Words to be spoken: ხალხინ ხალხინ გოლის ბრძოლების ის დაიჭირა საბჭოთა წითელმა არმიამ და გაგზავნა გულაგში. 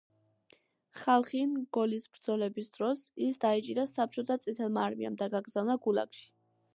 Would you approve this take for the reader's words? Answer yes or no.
no